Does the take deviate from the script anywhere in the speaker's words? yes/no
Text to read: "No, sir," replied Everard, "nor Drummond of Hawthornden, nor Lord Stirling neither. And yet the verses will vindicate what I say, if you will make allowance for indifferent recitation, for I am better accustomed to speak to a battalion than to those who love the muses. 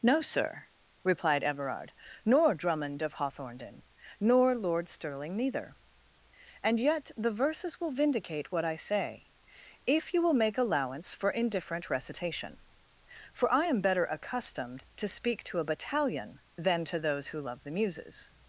no